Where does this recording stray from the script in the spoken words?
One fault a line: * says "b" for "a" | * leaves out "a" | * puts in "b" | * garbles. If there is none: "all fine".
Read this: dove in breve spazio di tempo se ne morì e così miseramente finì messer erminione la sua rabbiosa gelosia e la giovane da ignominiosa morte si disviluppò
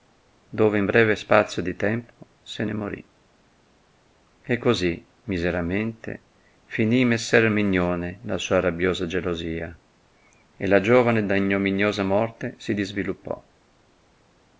all fine